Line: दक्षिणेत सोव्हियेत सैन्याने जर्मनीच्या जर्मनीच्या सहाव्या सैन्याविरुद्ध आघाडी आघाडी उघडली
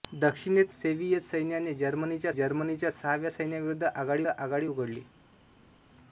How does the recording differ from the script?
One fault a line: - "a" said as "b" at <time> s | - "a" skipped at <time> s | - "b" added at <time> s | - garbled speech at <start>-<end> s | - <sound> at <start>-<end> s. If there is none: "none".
none